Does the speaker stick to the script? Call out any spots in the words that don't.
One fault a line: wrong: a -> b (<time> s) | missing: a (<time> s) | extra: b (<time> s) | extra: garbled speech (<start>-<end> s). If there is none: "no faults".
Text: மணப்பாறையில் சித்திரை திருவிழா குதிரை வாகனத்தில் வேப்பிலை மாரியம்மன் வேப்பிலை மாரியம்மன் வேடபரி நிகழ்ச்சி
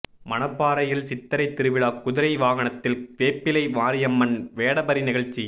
missing: வேப்பிலை மாரியம்மன் (4.3 s)